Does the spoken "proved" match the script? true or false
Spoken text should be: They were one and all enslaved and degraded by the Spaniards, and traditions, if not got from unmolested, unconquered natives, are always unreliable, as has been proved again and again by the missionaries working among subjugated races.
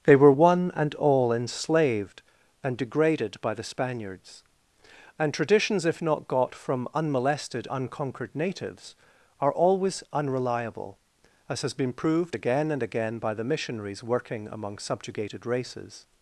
true